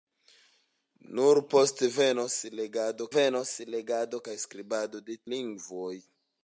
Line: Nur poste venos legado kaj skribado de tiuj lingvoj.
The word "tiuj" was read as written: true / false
false